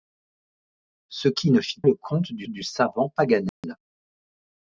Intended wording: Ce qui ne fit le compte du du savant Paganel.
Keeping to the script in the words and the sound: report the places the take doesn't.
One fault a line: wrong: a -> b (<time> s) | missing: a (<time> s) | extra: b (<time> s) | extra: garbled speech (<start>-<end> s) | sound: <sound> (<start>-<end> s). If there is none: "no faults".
sound: dropout (3.5-3.6 s)